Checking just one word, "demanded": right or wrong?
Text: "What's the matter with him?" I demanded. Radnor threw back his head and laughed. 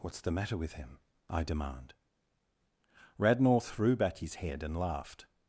wrong